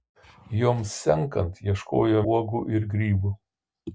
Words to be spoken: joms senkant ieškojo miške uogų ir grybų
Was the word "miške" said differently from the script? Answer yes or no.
yes